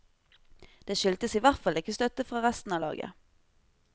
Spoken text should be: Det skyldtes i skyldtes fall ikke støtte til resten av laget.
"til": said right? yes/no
no